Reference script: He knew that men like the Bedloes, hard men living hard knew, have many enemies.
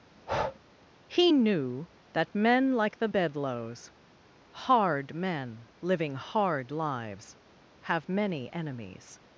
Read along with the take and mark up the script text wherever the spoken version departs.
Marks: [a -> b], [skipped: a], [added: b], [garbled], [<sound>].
[breath] He knew that men like the Bedloes, hard men living hard [knew, -> lives] have many enemies.